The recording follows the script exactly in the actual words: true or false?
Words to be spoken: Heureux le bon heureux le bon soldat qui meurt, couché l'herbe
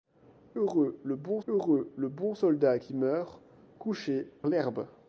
true